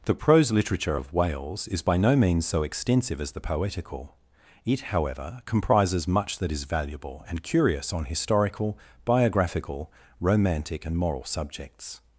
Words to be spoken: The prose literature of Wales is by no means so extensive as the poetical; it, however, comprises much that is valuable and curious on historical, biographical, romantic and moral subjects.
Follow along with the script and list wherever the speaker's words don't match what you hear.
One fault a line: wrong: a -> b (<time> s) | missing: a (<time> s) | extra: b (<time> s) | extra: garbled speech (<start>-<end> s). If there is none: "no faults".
no faults